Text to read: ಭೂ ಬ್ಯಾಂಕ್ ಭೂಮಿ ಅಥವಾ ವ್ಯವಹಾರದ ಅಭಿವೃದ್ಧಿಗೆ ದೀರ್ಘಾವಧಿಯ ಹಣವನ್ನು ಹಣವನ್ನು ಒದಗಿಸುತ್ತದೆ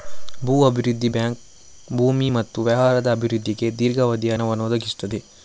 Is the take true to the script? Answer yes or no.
no